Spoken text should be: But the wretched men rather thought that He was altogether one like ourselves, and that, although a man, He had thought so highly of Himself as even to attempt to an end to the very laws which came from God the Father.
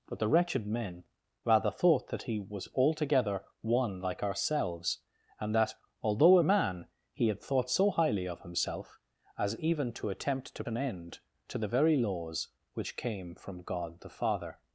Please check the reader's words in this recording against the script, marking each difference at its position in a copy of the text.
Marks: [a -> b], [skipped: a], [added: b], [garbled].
But the wretched men rather thought that He was altogether one like ourselves, and that, although a man, He had thought so highly of Himself as even to attempt to an end to the very laws which came from God the Father.